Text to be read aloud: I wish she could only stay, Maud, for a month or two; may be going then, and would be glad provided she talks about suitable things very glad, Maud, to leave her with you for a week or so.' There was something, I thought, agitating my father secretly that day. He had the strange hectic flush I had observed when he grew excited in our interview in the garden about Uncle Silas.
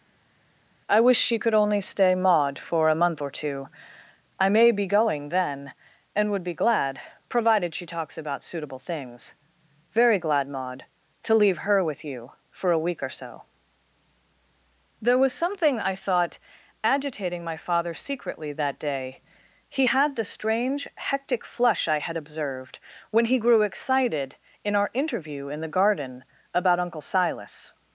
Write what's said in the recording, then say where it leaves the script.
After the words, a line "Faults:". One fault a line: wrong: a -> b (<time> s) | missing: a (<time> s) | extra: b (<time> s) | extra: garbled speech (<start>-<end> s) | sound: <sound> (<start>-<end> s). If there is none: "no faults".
I wish she could only stay, Maud, for a month or two; I may be going then, and would be glad provided she talks about suitable things very glad, Maud, to leave her with you for a week or so.' There was something, I thought, agitating my father secretly that day. He had the strange hectic flush I had observed when he grew excited in our interview in the garden about Uncle Silas.
Faults:
extra: I (4.4 s)